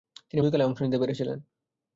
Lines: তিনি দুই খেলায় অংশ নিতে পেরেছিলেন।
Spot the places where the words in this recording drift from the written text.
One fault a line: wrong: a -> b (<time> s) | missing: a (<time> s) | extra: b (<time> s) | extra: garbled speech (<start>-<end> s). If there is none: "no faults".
no faults